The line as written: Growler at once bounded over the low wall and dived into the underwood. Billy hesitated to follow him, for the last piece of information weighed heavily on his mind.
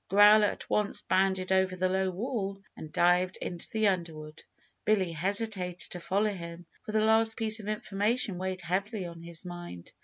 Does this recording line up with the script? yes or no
yes